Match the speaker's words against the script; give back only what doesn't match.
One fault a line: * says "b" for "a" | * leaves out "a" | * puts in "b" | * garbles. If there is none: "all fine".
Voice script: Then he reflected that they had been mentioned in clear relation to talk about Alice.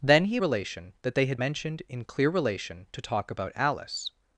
* says "relation" for "reflected"
* leaves out "been"